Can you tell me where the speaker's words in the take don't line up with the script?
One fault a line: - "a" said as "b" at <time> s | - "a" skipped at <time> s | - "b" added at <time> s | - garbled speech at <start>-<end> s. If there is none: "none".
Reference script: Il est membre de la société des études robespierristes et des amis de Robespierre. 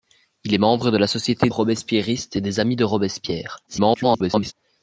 - "des études" skipped at 1.5 s
- garbled speech at 3.7-4.5 s